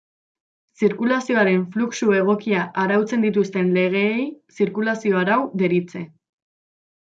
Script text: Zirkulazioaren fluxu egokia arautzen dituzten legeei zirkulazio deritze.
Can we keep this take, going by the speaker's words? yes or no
no